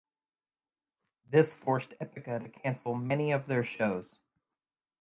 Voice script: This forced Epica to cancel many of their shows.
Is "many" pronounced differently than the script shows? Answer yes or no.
no